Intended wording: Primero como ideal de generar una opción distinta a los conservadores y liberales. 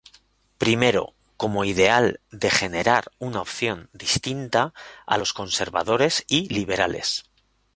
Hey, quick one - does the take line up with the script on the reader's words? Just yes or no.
yes